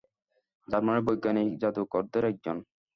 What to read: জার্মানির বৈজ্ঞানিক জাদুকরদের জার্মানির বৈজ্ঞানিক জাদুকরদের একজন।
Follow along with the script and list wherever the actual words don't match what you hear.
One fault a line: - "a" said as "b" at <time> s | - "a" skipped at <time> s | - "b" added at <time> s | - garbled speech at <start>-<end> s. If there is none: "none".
- "জার্মানির বৈজ্ঞানিক জাদুকরদের" skipped at 2.2 s